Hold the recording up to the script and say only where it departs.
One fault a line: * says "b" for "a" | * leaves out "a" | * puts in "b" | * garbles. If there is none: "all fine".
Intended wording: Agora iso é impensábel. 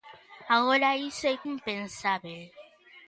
all fine